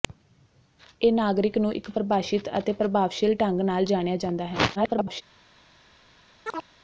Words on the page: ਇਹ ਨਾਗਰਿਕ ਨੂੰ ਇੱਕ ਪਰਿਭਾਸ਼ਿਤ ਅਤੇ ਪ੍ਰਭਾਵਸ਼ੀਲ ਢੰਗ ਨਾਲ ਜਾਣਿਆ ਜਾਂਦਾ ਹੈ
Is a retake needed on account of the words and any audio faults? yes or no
yes